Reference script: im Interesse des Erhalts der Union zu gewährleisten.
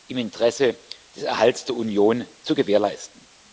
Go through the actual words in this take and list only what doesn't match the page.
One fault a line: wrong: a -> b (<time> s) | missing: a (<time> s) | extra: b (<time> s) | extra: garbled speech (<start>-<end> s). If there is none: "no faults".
no faults